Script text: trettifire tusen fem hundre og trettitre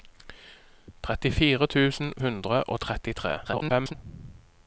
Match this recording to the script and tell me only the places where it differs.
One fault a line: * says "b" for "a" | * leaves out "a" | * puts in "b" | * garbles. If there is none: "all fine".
* leaves out "fem"
* garbles